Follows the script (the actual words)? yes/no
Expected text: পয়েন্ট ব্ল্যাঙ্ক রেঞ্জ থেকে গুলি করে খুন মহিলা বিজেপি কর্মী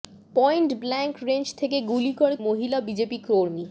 no